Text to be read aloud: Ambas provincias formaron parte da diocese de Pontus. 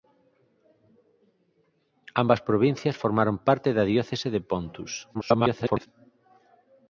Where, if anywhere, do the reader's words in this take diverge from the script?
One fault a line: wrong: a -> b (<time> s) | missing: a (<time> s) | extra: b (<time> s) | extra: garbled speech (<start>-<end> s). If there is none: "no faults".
extra: garbled speech (5.1-5.9 s)